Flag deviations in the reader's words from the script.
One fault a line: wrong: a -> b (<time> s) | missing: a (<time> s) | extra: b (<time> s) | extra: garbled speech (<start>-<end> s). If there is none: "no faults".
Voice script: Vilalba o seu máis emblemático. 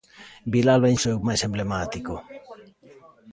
no faults